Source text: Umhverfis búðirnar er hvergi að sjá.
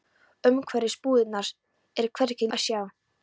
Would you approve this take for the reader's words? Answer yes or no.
yes